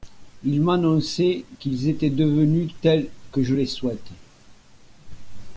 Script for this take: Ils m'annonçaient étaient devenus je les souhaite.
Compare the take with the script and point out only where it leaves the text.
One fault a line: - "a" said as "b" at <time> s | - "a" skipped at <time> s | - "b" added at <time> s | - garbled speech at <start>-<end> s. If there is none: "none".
- "qu'ils" added at 1.6 s
- "tels que" added at 2.8 s